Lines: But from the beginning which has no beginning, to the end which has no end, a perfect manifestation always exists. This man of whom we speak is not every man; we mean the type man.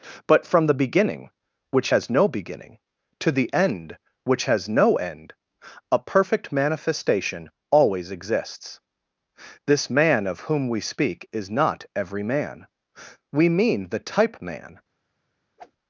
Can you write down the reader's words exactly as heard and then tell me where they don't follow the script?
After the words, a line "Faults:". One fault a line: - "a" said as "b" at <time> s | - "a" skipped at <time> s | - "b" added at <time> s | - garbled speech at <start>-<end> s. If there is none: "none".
But from the beginning which has no beginning, to the end which has no end, a perfect manifestation always exists. This man of whom we speak is not every man; we mean the type man.
Faults:
none